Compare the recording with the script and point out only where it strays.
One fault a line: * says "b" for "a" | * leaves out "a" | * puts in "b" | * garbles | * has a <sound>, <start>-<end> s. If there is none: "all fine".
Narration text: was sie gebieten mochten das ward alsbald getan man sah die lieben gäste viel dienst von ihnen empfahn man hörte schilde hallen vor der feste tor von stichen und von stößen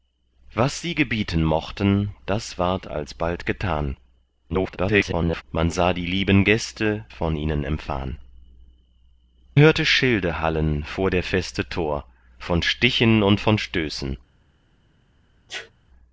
* garbles
* leaves out "viel dienst"
* leaves out "man"
* has a sneeze, 15.5-15.7 s